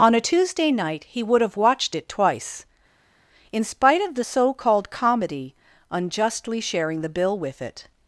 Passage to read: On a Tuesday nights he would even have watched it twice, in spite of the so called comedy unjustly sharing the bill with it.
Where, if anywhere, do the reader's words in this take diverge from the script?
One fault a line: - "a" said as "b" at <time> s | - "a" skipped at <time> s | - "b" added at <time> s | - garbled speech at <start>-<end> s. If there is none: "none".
- "nights" said as "night" at 0.7 s
- "even" skipped at 1.4 s